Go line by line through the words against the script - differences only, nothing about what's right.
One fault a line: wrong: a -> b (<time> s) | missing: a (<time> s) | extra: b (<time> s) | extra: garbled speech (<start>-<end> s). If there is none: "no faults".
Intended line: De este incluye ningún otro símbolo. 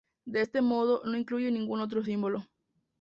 extra: modo no (0.6 s)